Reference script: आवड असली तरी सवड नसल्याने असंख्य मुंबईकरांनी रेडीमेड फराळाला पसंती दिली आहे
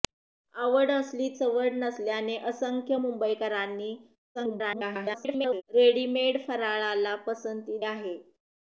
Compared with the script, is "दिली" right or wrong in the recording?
wrong